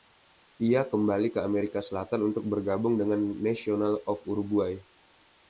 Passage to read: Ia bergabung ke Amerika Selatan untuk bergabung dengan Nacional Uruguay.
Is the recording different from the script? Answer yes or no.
yes